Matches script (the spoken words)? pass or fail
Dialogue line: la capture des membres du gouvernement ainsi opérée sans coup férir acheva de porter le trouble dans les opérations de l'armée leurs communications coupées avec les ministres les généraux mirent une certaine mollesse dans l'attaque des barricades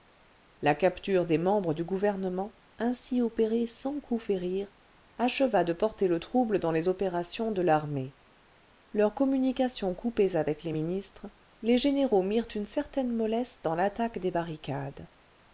pass